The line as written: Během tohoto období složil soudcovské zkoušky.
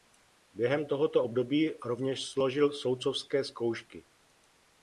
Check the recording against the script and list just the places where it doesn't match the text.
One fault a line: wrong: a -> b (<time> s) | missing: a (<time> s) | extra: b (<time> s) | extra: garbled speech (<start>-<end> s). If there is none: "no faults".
extra: rovněž (1.8 s)